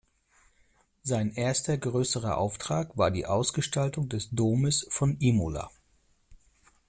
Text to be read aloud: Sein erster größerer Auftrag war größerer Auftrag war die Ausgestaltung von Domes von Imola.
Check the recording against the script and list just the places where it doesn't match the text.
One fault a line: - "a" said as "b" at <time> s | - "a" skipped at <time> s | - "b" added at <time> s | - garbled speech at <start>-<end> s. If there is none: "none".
- "größerer Auftrag war" skipped at 3.1 s
- "von" said as "des" at 4.1 s